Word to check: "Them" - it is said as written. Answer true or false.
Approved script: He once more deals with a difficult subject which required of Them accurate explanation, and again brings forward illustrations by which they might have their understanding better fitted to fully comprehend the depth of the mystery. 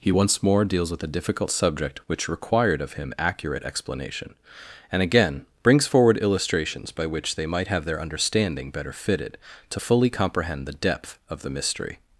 false